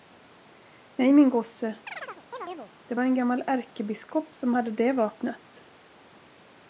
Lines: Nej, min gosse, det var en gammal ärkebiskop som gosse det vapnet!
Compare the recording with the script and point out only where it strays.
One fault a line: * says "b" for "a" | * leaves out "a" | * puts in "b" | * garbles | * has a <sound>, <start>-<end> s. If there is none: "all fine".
* has a chirp, 1.9-2.7 s
* says "hade" for "gosse"